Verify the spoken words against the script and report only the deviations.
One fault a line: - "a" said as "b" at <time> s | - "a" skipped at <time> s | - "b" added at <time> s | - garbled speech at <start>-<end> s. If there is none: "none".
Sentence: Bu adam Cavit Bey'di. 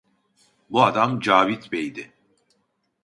none